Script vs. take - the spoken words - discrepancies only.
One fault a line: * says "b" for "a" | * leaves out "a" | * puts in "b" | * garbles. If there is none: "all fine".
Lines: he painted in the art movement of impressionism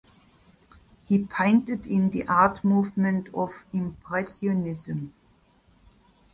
all fine